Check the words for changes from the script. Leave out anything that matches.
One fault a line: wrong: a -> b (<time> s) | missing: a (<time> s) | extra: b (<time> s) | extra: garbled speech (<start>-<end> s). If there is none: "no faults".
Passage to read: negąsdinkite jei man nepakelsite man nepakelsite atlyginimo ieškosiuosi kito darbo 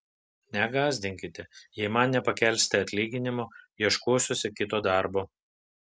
missing: man nepakelsite (2.8 s)